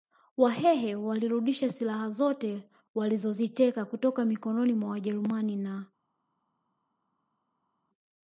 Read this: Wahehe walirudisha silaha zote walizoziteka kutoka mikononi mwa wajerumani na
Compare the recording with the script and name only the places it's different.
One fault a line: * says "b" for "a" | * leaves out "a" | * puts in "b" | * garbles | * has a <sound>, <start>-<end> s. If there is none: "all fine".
all fine